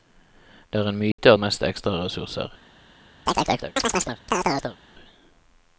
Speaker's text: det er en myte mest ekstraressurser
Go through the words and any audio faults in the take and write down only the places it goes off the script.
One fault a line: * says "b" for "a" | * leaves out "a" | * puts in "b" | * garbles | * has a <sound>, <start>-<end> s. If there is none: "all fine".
* has a dropout, 1.1-1.2 s
* has a chirp, 3.3-4.8 s